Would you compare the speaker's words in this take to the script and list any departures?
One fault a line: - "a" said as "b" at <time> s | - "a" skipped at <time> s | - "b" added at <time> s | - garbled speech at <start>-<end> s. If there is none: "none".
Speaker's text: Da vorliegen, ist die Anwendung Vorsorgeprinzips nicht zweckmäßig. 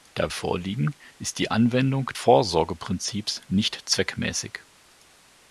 none